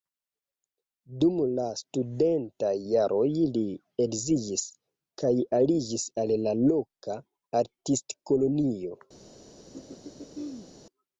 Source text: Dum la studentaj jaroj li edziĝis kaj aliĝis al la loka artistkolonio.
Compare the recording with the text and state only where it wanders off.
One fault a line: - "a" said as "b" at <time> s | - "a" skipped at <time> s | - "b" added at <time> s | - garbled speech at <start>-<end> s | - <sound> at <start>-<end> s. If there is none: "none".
- throat clearing at 9.7-10.7 s